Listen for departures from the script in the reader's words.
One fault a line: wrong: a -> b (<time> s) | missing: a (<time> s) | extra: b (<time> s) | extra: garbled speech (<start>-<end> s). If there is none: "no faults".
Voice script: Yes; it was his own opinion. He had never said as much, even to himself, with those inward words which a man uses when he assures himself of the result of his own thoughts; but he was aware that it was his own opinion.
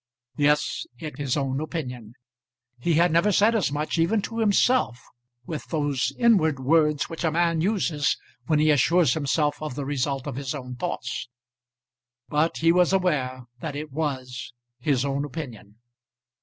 missing: was (1.2 s)